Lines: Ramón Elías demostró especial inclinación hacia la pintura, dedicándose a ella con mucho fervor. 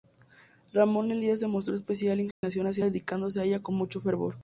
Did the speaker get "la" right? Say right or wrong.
wrong